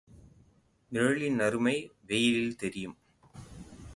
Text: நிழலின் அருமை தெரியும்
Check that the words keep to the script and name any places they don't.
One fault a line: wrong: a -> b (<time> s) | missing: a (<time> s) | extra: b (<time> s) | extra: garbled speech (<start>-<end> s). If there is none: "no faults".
extra: வெயிலில் (2.1 s)